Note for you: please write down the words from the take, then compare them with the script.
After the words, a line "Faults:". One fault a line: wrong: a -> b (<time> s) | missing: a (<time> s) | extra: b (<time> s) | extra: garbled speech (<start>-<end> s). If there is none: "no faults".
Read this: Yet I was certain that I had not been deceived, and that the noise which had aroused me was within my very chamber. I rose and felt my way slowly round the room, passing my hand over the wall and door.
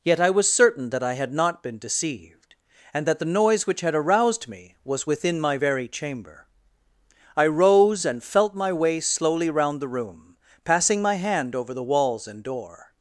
Yet I was certain that I had not been deceived, and that the noise which had aroused me was within my very chamber. I rose and felt my way slowly round the room, passing my hand over the walls and door.
Faults:
wrong: wall -> walls (11.8 s)